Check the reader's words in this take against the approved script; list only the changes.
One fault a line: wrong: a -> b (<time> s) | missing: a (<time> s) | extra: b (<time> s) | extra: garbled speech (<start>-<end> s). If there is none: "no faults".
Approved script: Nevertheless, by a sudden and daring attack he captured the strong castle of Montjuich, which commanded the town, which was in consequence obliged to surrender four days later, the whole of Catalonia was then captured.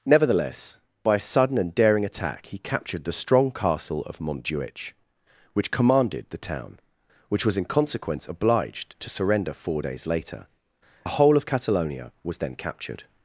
no faults